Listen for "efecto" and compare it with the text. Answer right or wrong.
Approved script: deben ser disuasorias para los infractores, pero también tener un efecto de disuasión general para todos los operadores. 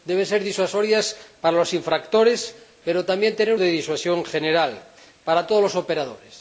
wrong